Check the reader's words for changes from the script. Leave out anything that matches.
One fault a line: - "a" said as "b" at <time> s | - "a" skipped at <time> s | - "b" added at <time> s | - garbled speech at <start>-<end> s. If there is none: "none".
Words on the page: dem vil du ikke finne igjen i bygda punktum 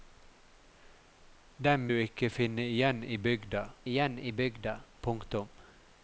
- "vil" skipped at 1.9 s
- "igjen i bygda" added at 3.9 s